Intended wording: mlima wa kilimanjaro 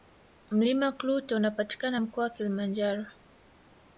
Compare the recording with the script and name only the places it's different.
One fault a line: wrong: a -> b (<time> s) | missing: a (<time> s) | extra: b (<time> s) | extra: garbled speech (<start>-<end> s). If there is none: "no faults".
extra: klute unapatikana mkoa (0.9 s)